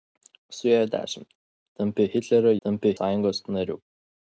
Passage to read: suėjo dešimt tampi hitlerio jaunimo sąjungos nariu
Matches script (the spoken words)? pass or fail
fail